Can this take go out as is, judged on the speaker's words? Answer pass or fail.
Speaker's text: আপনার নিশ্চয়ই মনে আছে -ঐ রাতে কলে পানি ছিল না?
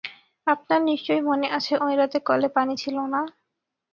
pass